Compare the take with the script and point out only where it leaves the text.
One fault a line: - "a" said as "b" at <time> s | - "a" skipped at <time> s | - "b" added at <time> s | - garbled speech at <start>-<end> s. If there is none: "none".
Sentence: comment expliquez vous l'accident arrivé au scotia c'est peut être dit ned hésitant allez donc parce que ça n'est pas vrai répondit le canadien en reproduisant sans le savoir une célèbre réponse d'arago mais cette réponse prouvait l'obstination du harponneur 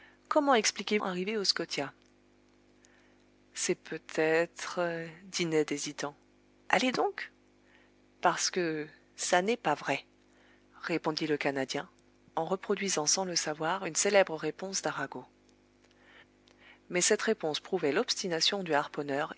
- "vous l'accident" skipped at 1.0 s